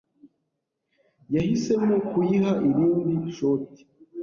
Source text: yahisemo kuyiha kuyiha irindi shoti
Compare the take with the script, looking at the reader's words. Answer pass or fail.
fail